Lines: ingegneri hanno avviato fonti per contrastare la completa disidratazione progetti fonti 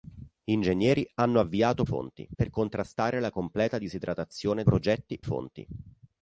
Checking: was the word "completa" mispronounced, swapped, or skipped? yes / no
no